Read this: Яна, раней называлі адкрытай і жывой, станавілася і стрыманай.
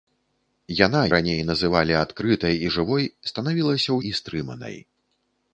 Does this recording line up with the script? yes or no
yes